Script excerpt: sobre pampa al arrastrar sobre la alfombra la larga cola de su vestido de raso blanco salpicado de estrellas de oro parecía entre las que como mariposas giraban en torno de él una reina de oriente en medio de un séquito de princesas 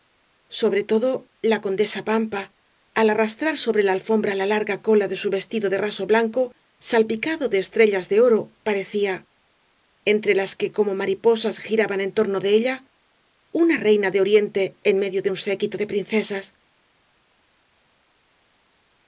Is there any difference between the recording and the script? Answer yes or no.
yes